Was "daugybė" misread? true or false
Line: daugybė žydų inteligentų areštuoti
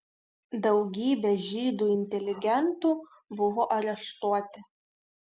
false